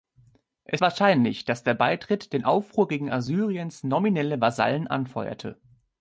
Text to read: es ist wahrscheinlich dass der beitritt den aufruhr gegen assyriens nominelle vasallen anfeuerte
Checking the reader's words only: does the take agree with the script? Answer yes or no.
no